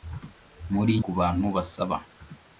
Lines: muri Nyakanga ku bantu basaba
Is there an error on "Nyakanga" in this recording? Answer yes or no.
yes